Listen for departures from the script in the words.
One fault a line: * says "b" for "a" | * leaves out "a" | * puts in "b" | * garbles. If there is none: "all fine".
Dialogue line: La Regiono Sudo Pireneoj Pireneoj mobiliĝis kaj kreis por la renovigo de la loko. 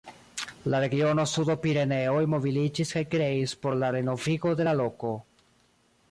* leaves out "Pireneoj"